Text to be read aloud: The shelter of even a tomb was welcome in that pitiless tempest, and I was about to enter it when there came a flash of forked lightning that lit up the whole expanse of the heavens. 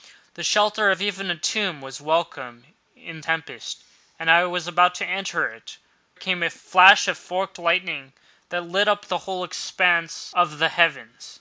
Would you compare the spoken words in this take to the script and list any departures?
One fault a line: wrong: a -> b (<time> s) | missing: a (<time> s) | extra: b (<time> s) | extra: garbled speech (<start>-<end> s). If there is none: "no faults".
missing: that pitiless (3.2 s)
missing: when there (5.8 s)